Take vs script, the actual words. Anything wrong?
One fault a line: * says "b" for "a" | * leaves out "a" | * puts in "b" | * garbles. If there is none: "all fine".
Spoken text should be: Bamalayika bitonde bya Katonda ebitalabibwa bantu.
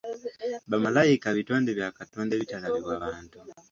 all fine